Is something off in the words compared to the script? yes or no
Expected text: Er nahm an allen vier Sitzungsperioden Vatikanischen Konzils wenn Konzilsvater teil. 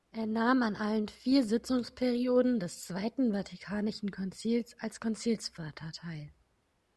yes